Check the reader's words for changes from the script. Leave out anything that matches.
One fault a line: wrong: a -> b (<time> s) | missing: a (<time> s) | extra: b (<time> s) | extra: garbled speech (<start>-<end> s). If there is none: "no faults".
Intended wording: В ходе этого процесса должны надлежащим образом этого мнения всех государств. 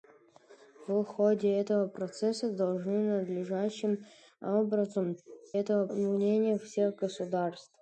no faults